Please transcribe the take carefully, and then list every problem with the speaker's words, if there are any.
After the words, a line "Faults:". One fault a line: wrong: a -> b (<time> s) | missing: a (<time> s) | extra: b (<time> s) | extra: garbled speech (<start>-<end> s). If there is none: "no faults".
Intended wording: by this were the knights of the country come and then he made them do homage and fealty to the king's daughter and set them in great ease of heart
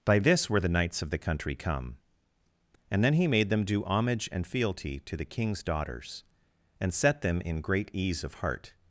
by this were the knights of the country come and then he made them do homage and fealty to the king's daughters and set them in great ease of heart
Faults:
wrong: daughter -> daughters (5.6 s)